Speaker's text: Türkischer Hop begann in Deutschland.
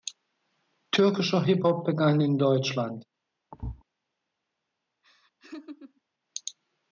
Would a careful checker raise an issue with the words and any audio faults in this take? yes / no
yes